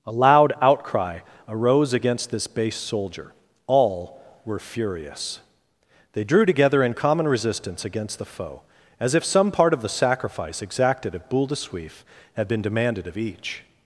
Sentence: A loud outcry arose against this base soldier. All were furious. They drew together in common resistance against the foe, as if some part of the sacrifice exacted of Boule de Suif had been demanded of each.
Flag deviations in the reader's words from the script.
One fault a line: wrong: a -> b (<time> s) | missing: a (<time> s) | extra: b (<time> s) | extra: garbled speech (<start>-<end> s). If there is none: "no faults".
no faults